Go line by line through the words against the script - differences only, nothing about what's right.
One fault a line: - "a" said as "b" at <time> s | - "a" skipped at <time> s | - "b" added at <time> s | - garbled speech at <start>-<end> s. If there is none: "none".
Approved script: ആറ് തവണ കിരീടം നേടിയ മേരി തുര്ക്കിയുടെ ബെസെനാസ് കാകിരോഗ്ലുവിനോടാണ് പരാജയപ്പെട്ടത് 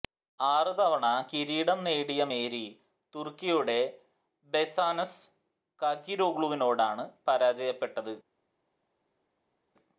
none